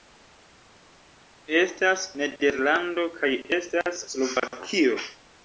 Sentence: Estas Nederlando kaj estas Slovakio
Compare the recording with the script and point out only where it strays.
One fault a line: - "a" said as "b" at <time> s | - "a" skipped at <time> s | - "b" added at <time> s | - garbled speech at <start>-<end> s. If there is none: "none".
none